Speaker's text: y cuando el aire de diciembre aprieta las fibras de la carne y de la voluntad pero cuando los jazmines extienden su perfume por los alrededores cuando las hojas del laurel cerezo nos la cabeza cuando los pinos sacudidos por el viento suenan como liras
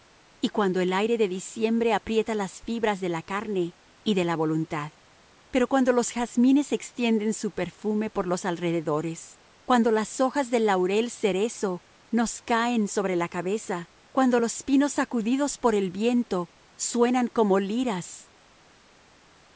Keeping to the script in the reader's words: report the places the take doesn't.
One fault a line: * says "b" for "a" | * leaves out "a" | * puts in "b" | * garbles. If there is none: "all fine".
* puts in "caen sobre"